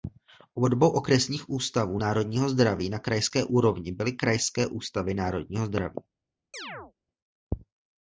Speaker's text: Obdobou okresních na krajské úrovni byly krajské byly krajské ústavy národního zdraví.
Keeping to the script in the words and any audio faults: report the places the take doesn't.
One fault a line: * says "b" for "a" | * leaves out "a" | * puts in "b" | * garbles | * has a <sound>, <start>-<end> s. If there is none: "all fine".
* puts in "ústavů národního zdraví"
* leaves out "byly krajské"
* has a chirp, 6.5-6.9 s